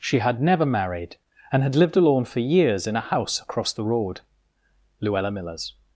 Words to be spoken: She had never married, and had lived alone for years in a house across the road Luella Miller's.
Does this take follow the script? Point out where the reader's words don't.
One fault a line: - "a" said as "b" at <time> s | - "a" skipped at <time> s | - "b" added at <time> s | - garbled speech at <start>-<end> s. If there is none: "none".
none